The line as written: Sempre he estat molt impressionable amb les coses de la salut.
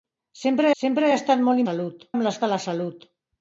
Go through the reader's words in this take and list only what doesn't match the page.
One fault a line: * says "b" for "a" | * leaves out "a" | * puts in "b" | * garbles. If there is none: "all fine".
* puts in "sempre"
* says "salut" for "impressionable"
* leaves out "coses"